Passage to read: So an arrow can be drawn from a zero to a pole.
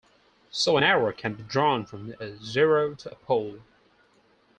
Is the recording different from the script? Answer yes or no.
no